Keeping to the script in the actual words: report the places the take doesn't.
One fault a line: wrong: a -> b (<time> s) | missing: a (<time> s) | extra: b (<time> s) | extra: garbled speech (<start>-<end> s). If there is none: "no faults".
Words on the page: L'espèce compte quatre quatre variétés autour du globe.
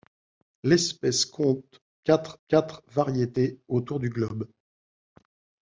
no faults